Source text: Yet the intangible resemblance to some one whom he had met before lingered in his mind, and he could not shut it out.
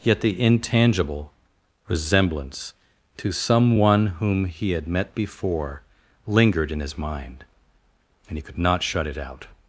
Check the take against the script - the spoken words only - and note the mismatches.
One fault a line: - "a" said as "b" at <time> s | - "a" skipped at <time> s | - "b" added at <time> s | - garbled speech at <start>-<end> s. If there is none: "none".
none